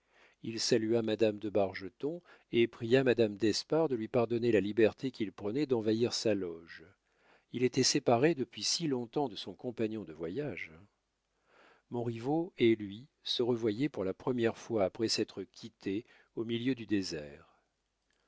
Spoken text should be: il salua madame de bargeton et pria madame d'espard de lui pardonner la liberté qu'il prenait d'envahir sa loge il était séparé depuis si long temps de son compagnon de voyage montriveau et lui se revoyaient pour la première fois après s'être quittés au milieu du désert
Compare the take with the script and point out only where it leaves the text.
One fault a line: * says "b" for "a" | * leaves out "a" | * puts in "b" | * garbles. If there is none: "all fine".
all fine